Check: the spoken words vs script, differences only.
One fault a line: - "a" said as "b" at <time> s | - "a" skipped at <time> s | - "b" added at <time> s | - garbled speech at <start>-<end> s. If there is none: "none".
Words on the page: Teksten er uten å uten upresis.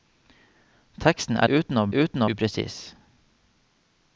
none